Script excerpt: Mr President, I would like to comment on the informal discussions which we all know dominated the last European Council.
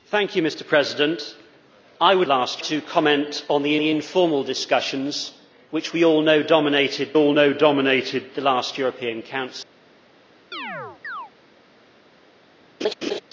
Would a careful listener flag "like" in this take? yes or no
yes